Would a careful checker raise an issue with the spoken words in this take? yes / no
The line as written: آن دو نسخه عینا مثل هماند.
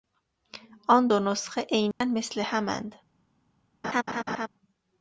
no